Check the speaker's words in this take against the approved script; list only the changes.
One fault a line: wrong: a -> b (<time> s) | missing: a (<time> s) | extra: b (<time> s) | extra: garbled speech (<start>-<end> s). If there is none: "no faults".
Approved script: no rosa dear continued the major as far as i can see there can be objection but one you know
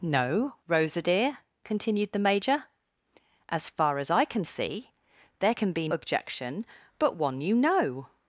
no faults